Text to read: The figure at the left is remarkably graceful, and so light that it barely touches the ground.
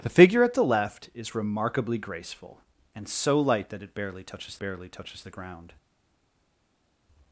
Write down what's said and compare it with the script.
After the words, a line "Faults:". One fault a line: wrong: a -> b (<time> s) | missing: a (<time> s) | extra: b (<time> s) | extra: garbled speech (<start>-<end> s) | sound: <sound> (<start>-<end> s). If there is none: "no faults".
The figure at the left is remarkably graceful, and so light that it barely touches barely touches the ground.
Faults:
extra: barely touches (4.6 s)